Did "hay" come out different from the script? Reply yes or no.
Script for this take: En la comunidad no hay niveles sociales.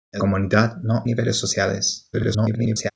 yes